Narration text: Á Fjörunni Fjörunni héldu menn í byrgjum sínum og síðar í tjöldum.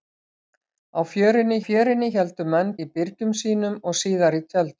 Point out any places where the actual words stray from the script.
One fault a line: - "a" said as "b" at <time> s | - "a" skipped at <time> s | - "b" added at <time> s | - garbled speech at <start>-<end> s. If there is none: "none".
none